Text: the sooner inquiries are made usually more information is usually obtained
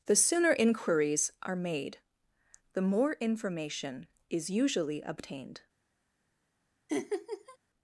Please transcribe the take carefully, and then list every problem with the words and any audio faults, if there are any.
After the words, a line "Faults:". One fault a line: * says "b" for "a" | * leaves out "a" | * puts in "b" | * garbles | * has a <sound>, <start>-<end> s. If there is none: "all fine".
the sooner inquiries are made the more information is usually obtained
Faults:
* says "the" for "usually"
* has a laugh, 6.9-7.6 s